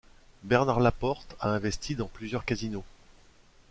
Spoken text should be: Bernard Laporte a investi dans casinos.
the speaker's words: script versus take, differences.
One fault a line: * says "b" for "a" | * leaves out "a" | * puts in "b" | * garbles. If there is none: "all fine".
* puts in "plusieurs"